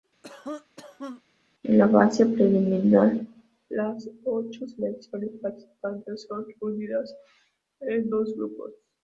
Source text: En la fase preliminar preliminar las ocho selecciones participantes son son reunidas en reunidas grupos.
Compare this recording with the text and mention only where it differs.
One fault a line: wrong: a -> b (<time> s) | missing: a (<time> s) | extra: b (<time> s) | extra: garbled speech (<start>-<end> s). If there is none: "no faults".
missing: preliminar (3.1 s)
missing: son (6.4 s)
wrong: reunidas -> dos (8.1 s)